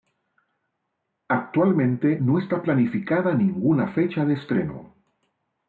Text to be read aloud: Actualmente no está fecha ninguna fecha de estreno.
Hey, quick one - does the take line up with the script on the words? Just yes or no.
no